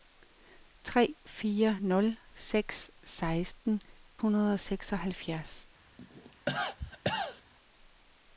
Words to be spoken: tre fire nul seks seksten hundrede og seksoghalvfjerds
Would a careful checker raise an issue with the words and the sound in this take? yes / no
yes